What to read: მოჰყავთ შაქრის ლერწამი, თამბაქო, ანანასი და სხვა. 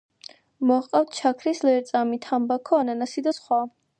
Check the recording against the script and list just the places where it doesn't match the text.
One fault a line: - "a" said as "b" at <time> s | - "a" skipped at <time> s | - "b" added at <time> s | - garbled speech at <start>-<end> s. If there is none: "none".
none